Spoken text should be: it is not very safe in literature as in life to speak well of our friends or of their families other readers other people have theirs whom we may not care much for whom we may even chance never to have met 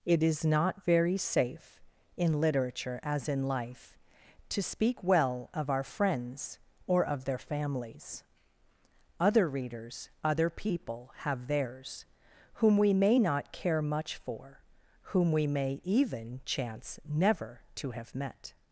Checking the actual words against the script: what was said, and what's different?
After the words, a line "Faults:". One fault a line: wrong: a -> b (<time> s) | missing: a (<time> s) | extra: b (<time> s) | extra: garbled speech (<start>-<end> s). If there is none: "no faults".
it is not very safe in literature as in life to speak well of our friends or of their families other readers other people have theirs whom we may not care much for whom we may even chance never to have met
Faults:
no faults